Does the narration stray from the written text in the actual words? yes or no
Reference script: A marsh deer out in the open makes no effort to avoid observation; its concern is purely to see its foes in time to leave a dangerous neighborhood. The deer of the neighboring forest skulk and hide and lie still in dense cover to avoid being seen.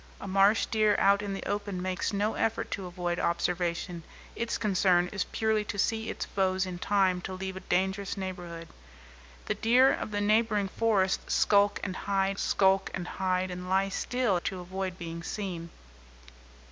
yes